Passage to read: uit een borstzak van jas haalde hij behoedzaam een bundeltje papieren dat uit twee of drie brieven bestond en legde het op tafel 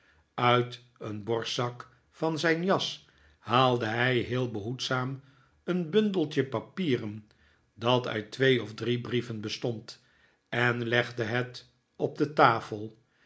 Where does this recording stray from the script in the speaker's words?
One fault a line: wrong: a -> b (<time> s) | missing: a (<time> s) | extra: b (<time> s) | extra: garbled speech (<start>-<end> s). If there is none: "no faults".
extra: zijn (2.4 s)
extra: heel (4.2 s)
extra: de (12.2 s)